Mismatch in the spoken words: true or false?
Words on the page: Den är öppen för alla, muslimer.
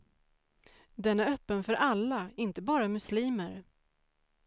true